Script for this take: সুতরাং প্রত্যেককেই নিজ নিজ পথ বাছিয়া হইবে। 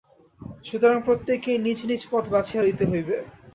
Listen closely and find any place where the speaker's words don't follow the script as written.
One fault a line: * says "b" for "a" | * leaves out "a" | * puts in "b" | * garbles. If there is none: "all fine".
* puts in "লইতে"